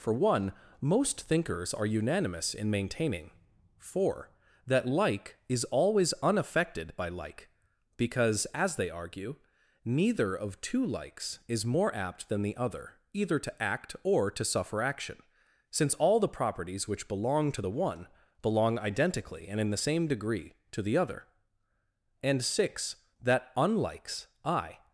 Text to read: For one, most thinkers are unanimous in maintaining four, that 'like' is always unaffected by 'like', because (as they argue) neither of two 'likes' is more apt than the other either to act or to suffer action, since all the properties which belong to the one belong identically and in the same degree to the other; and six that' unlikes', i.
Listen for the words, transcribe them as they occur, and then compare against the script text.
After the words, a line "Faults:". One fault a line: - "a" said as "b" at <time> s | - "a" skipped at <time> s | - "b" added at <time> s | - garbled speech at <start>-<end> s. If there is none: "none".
For one, most thinkers are unanimous in maintaining four, that 'like' is always unaffected by 'like', because (as they argue) neither of two 'likes' is more apt than the other either to act or to suffer action, since all the properties which belong to the one belong identically and in the same degree to the other; and six that' unlikes', i.
Faults:
none